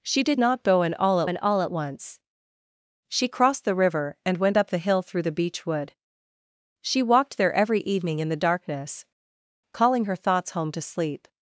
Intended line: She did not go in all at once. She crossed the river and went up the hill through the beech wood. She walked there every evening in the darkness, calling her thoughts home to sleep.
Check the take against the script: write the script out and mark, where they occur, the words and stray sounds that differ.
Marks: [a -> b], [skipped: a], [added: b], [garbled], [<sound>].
She did not go in all at [added: in all at] once. She crossed the river and went up the hill through the beech wood. She walked there every evening in the darkness, calling her thoughts home to sleep.